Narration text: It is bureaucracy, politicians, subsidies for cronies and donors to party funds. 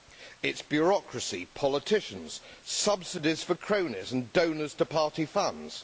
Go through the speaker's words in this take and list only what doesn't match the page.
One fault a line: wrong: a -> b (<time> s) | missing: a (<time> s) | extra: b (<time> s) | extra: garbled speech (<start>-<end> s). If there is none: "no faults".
no faults